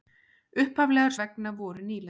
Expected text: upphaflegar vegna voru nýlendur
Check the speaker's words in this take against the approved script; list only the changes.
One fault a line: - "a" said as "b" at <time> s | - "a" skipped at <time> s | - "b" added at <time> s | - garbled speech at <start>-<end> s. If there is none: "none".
none